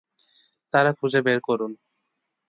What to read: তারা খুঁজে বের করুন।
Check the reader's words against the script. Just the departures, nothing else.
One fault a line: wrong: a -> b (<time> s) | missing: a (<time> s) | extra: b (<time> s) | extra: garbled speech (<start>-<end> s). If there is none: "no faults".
no faults